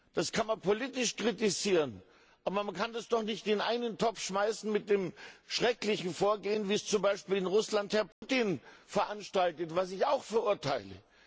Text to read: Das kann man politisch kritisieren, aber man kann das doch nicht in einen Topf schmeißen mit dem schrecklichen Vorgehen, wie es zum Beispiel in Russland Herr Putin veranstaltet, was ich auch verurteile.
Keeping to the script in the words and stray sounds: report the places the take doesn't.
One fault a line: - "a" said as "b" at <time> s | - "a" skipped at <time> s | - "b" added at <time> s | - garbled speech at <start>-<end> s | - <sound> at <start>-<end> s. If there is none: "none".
- dropout at 8.1-8.2 s